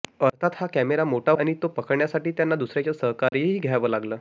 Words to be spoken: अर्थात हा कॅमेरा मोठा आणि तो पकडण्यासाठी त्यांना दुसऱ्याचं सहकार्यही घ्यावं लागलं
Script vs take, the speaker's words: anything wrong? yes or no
no